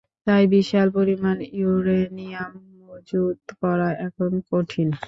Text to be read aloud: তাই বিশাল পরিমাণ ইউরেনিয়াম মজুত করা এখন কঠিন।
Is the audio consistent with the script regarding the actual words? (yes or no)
yes